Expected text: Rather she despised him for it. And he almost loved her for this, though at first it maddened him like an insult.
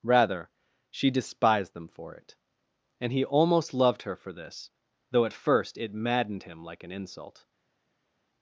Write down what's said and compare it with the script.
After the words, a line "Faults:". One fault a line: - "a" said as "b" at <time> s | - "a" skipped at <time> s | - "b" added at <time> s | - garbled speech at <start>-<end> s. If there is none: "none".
Rather she despised them for it. And he almost loved her for this, though at first it maddened him like an insult.
Faults:
- "him" said as "them" at 1.7 s